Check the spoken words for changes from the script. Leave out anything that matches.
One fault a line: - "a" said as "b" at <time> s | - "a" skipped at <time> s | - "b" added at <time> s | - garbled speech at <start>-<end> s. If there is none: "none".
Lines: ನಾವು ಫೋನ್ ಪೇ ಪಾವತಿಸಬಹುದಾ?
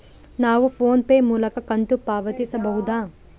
- "ಮೂಲಕ ಕಂತು" added at 1.2 s